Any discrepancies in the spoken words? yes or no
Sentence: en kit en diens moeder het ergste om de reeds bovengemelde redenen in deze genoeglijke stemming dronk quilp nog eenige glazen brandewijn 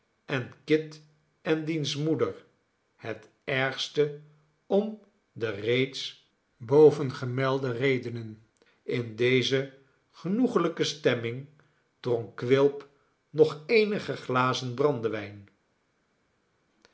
no